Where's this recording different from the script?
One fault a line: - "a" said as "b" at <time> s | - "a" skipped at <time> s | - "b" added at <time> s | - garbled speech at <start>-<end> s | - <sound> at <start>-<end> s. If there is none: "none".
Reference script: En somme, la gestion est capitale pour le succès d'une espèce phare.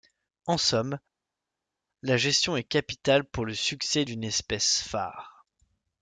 none